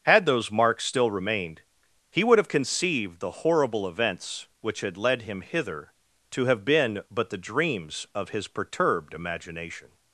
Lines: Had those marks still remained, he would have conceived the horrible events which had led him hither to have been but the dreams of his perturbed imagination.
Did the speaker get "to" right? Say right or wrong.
right